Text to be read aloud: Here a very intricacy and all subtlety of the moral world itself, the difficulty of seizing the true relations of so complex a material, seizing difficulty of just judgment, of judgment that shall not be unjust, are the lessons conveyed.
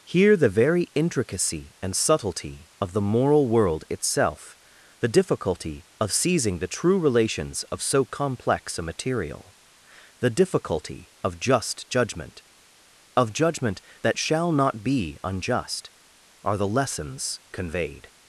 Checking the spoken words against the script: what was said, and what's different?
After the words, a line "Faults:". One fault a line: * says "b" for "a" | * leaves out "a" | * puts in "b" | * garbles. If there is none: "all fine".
Here the very intricacy and subtlety of the moral world itself, the difficulty of seizing the true relations of so complex a material, the difficulty of just judgment, of judgment that shall not be unjust, are the lessons conveyed.
Faults:
* says "the" for "a"
* leaves out "all"
* says "the" for "seizing"